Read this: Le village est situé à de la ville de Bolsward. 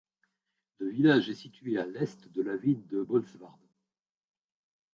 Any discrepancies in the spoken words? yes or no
yes